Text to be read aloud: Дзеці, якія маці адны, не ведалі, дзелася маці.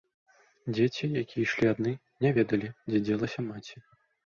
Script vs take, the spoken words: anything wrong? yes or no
yes